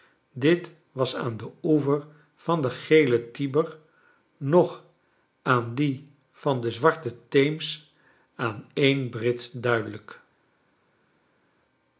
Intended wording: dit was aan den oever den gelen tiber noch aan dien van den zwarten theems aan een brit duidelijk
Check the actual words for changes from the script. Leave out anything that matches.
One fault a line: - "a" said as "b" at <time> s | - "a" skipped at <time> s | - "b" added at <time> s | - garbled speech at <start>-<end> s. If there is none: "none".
- "van" added at 2.4 s